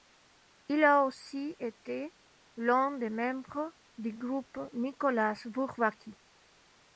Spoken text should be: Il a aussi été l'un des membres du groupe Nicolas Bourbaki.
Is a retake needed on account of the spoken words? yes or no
no